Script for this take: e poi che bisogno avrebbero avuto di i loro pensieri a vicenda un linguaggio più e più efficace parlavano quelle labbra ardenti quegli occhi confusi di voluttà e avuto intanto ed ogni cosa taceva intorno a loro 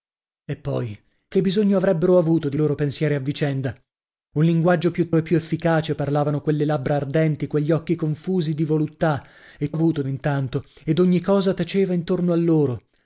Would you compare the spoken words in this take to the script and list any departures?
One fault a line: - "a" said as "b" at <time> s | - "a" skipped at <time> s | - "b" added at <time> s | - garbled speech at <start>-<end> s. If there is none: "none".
none